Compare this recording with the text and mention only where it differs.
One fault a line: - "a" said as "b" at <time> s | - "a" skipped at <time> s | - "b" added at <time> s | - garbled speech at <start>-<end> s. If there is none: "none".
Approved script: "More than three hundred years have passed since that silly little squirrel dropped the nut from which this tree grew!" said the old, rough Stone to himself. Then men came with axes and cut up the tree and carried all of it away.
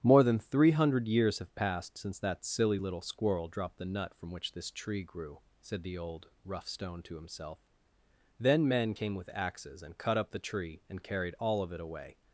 none